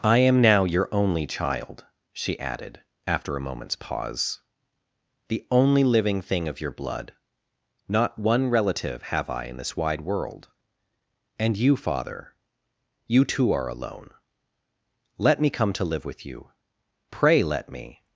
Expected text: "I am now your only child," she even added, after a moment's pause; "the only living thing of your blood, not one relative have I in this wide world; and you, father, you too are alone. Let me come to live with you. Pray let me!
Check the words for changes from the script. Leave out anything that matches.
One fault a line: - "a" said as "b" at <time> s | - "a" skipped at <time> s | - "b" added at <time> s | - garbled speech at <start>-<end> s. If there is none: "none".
- "even" skipped at 2.4 s